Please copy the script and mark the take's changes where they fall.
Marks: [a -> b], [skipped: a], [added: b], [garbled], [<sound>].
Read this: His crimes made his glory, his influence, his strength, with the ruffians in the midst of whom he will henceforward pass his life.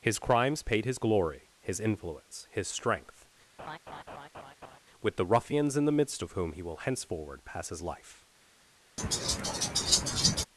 His crimes [made -> paid] his glory, his influence, his strength, [laugh] with the ruffians in the midst of whom he will henceforward pass his life. [laugh]